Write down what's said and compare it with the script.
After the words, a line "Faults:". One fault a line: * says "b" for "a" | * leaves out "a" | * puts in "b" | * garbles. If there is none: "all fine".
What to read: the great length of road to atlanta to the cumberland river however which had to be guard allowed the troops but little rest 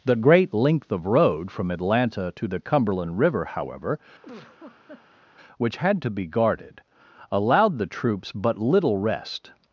the great length of road from atlanta to the cumberland river however which had to be guarded allowed the troops but little rest
Faults:
* says "from" for "to"
* says "guarded" for "guard"